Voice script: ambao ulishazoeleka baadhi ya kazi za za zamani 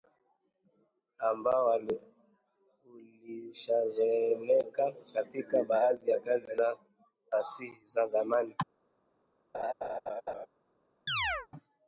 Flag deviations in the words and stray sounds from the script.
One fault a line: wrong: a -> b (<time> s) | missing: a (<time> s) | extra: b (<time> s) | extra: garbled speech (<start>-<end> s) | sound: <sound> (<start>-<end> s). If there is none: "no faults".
extra: katika (5.1 s)
extra: fasihi (7.3 s)
sound: laugh (9.5-10.5 s)
sound: chirp (11.1-11.5 s)